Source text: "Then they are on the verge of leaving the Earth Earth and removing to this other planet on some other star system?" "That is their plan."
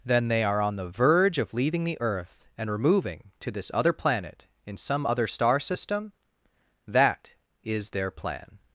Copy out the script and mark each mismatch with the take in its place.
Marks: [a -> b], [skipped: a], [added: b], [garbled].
"Then they are on the verge of leaving the Earth [skipped: Earth] and removing to this other planet [on -> in] some other star system?" "That is their plan."